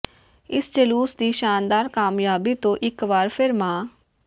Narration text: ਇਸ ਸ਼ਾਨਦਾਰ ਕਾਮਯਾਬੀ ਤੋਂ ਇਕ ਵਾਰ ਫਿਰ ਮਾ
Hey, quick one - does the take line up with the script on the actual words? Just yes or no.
no